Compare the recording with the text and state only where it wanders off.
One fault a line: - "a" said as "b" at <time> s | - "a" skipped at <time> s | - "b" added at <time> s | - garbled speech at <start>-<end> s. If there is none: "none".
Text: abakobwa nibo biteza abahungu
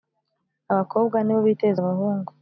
none